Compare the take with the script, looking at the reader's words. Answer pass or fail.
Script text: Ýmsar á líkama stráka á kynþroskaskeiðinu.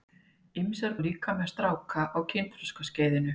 pass